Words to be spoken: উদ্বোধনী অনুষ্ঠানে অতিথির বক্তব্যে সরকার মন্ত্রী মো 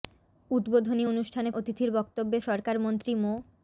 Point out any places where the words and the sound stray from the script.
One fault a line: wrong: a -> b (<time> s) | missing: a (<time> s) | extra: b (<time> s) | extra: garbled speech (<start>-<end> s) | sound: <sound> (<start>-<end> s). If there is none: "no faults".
no faults